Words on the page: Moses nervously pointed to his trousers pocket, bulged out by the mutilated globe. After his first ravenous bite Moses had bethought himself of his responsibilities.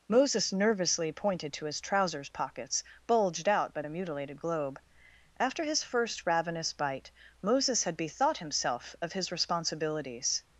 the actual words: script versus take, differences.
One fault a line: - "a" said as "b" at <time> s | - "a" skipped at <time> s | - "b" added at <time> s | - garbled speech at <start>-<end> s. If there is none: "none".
- "pocket" said as "pockets" at 2.3 s